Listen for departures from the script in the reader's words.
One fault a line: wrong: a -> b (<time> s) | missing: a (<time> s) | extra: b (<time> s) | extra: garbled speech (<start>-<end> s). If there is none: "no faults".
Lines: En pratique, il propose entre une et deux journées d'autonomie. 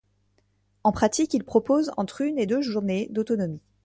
no faults